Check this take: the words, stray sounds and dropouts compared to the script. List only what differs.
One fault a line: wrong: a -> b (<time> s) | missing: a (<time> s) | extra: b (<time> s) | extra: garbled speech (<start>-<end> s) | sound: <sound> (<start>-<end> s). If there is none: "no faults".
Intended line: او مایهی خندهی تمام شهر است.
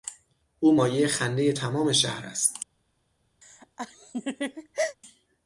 sound: laugh (3.4-5.0 s)